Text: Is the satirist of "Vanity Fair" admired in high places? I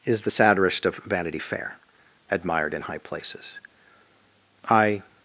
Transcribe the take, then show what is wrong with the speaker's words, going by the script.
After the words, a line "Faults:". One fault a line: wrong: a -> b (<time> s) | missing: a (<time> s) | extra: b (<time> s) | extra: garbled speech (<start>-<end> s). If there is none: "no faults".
Is the satirist of "Vanity Fair" admired in high places? I
Faults:
no faults